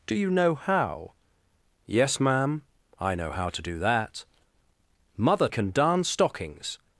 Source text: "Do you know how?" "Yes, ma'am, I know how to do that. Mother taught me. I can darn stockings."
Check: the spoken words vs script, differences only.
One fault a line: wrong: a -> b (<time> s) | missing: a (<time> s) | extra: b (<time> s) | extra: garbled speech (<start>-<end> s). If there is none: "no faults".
missing: taught me I (5.5 s)